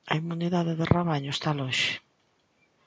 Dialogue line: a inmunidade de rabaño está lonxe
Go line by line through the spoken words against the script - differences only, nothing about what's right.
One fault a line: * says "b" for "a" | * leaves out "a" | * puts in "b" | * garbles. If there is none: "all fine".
all fine